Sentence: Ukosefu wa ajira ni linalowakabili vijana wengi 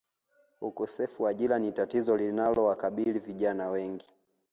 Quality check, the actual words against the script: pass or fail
fail